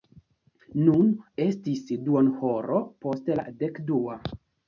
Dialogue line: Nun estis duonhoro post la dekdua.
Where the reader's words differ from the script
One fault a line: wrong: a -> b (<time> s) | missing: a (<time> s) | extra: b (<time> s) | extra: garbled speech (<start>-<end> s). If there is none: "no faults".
no faults